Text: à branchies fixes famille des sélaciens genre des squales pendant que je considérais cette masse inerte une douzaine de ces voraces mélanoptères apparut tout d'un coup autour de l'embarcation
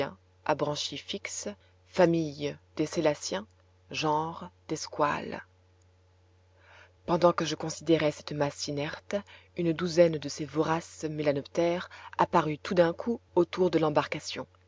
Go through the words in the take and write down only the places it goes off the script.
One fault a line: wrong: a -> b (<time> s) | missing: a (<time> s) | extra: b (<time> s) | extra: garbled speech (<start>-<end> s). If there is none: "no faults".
no faults